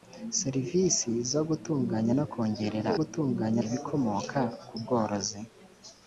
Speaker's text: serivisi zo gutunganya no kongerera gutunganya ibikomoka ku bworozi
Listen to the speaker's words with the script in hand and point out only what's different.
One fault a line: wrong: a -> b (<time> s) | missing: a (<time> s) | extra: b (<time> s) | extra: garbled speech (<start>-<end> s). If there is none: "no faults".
no faults